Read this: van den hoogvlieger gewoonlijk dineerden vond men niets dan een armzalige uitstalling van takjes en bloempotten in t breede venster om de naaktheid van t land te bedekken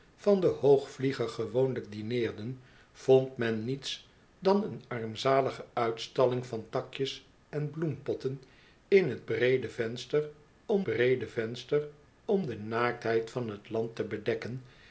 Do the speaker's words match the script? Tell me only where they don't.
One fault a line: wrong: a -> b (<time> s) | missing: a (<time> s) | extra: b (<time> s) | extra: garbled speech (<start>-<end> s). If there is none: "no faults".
extra: breede venster om (10.8 s)